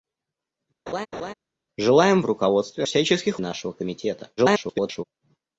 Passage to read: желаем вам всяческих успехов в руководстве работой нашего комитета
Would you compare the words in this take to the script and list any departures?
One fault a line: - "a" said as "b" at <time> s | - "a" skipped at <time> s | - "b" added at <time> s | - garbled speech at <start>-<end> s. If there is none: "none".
- "вам всяческих успехов" skipped at 2.2 s
- "работой" said as "всяческих" at 2.8 s
- garbled speech at 4.4-5.0 s